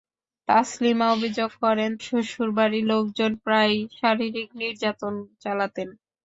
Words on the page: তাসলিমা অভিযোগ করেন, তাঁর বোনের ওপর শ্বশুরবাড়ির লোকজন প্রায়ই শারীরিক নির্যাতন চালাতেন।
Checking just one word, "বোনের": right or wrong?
wrong